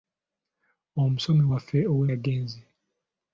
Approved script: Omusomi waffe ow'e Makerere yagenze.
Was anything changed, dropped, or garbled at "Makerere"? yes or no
yes